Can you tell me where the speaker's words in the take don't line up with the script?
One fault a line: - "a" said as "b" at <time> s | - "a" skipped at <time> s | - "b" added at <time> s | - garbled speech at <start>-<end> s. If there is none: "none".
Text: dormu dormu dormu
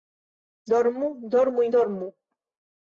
none